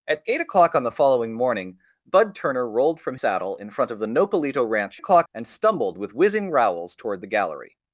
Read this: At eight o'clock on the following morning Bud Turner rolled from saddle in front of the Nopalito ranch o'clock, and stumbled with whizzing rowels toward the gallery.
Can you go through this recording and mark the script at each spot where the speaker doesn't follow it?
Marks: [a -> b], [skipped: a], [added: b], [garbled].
At eight o'clock on the following morning Bud Turner rolled from saddle in front of the Nopalito ranch o'clock, and stumbled with whizzing rowels toward the gallery.